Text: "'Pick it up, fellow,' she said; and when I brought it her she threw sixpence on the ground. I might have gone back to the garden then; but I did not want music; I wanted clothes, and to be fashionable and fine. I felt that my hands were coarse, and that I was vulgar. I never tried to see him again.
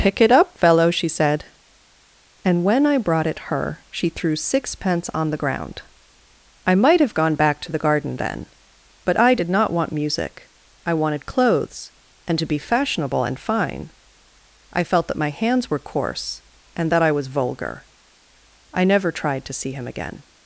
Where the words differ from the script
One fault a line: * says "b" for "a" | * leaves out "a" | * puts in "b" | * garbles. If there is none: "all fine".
all fine